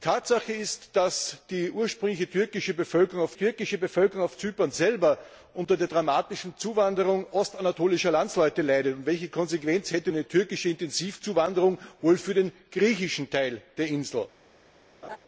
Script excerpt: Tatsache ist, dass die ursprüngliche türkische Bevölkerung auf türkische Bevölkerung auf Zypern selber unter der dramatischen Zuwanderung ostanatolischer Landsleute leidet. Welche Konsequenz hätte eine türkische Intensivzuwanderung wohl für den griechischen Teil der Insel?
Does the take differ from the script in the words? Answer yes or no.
no